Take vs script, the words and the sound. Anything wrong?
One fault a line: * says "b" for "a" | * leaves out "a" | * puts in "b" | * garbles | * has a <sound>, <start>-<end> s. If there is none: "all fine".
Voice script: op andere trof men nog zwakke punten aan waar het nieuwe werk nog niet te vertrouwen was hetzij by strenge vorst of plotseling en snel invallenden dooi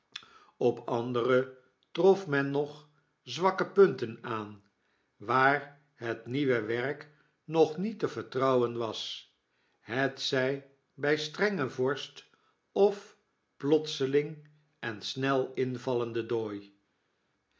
all fine